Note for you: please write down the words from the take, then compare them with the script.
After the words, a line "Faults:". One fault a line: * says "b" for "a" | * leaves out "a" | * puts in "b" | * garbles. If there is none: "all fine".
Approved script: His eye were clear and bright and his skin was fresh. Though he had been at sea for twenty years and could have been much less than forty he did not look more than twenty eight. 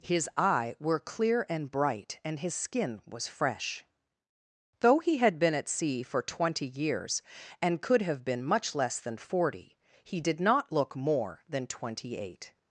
His eye were clear and bright and his skin was fresh. Though he had been at sea for twenty years and could have been much less than forty he did not look more than twenty eight.
Faults:
all fine